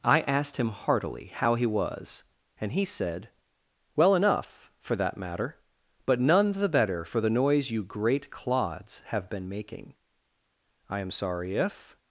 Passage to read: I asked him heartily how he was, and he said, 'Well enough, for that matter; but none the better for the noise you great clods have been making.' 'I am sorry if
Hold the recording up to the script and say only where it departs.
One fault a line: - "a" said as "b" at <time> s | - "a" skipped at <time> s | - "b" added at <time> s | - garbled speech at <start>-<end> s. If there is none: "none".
none